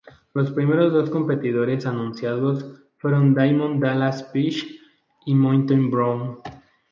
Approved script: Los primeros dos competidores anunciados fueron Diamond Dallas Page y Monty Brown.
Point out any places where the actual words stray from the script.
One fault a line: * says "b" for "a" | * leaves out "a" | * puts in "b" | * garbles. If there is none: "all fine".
all fine